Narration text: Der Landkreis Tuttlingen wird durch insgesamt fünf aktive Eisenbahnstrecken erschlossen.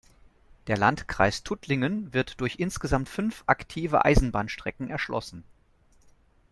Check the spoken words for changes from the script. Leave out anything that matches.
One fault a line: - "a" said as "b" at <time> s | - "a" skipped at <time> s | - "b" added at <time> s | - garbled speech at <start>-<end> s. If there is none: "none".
none